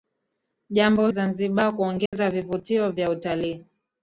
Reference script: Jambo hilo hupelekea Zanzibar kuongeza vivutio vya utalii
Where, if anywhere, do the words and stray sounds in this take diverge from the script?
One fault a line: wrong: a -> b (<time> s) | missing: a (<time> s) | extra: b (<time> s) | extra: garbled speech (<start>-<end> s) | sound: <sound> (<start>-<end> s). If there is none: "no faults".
missing: hilo hupelekea (1.1 s)
sound: dropout (2.1-2.1 s)